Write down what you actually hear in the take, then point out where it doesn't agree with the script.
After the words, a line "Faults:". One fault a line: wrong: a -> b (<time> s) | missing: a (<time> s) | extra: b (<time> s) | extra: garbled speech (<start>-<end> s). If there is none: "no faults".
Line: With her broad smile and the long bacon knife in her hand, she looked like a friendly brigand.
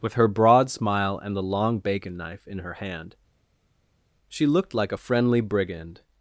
With her broad smile and the long bacon knife in her hand, she looked like a friendly brigand.
Faults:
no faults